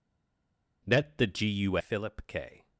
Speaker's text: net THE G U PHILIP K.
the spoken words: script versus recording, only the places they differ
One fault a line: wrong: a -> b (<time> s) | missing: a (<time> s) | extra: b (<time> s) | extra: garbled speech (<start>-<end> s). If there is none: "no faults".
no faults